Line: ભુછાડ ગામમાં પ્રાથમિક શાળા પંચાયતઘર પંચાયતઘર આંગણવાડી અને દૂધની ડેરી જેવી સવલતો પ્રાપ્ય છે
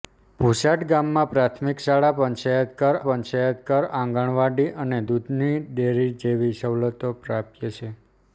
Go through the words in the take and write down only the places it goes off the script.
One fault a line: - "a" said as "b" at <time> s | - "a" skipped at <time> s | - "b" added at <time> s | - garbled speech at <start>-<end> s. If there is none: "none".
none